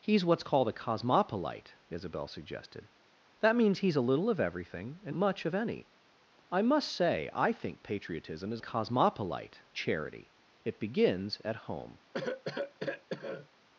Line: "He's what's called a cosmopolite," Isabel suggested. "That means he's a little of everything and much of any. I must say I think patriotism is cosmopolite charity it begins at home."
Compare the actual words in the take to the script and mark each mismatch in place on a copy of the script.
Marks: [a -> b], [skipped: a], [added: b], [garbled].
"He's what's called a cosmopolite," Isabel suggested. "That means he's a little of everything and much of any. I must say I think patriotism is cosmopolite charity it begins at home."